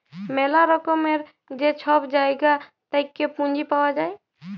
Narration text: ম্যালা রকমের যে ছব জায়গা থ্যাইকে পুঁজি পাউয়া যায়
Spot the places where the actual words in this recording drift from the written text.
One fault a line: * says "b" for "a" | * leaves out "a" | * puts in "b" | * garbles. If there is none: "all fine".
all fine